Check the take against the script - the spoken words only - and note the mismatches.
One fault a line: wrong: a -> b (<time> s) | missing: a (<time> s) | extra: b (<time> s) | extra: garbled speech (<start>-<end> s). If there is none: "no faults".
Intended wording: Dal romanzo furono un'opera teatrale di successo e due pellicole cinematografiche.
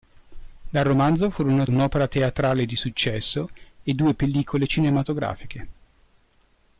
no faults